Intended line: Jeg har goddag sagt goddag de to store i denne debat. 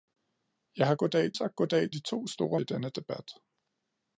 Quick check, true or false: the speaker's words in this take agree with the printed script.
true